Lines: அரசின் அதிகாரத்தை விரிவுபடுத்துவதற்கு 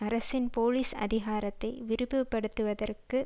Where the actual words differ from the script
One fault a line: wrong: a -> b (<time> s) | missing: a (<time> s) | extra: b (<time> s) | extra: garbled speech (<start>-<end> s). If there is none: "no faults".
extra: போலீஸ் (0.5 s)